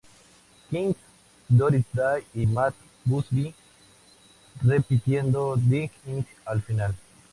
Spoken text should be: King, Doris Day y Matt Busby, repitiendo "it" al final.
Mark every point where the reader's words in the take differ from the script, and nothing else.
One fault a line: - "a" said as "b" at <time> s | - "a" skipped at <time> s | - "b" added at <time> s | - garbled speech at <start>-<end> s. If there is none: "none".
- "dig" added at 5.6 s